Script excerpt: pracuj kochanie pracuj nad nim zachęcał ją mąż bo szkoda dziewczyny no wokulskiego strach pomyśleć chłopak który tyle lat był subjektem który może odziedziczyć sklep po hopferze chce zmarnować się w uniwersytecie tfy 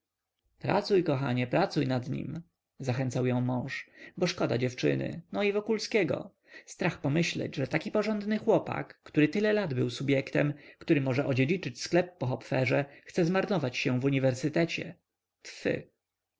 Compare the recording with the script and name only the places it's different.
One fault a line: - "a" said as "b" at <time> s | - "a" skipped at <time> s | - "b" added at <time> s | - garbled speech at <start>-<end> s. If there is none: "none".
- "i" added at 5.4 s
- "że taki porządny" added at 7.5 s